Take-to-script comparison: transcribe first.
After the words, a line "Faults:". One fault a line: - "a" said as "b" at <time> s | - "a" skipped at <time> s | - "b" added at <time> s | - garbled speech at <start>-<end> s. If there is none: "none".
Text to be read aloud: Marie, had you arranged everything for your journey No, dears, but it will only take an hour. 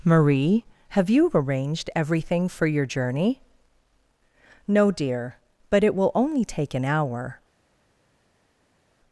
Marie, have you arranged everything for your journey No, dear, but it will only take an hour.
Faults:
- "had" said as "have" at 0.9 s
- "dears" said as "dear" at 4.9 s